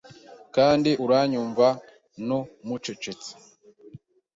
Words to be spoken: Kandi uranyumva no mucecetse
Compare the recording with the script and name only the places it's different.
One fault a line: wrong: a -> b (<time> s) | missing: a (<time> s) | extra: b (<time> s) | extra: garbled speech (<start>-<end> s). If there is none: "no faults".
no faults